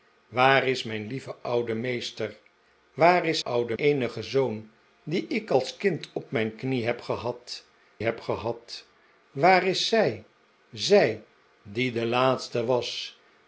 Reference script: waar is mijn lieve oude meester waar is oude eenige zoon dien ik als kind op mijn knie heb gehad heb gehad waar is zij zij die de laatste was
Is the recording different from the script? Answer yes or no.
no